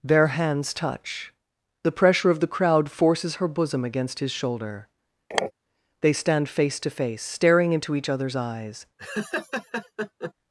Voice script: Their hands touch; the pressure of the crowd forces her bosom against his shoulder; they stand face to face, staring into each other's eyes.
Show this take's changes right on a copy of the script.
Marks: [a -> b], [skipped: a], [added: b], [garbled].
Their hands touch; the pressure of the crowd forces her bosom against his shoulder; they stand face to face, staring into each other's eyes.